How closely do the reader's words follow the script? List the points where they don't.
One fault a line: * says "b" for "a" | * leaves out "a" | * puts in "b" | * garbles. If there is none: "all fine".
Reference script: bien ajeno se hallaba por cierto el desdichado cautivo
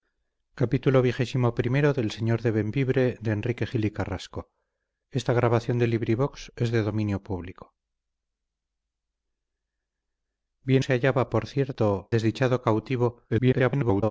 * leaves out "ajeno"
* leaves out "el"
* garbles